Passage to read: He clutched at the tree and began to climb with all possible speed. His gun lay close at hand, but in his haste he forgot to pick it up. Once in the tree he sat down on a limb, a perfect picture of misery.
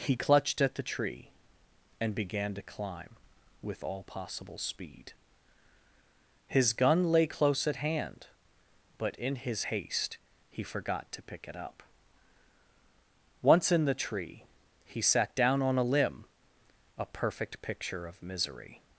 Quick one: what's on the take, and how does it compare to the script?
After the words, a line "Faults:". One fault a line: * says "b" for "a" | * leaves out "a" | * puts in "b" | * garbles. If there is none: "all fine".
He clutched at the tree and began to climb with all possible speed. His gun lay close at hand, but in his haste he forgot to pick it up. Once in the tree he sat down on a limb, a perfect picture of misery.
Faults:
all fine